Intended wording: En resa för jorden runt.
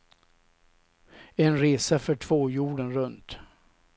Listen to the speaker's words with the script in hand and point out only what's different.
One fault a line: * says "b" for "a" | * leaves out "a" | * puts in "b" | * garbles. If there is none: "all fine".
* puts in "två"